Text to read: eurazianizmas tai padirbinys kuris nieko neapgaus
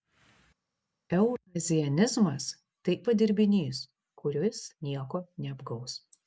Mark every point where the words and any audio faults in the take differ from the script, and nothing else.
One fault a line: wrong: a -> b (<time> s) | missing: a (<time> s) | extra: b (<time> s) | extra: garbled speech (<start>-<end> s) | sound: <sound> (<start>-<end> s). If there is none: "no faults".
no faults